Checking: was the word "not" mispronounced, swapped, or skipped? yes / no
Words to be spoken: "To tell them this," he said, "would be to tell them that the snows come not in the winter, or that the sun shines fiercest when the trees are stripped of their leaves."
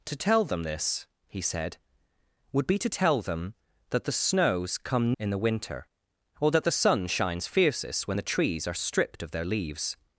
yes